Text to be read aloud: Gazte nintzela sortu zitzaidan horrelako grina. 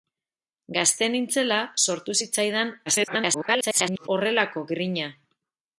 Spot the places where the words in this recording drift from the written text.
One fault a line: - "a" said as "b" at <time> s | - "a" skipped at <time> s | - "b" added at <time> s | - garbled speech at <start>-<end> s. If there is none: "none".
- garbled speech at 2.9-4.1 s